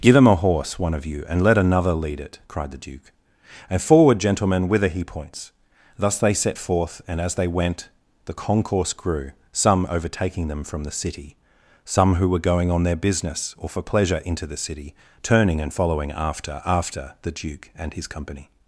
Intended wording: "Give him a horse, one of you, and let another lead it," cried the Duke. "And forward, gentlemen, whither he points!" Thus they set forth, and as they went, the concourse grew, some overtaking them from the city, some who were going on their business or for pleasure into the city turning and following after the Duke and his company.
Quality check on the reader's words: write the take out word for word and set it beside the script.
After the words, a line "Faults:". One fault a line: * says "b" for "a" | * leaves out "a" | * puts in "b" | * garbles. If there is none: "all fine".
"Give him a horse, one of you, and let another lead it," cried the Duke. "And forward, gentlemen, whither he points!" Thus they set forth, and as they went, the concourse grew, some overtaking them from the city, some who were going on their business or for pleasure into the city turning and following after after the Duke and his company.
Faults:
* puts in "after"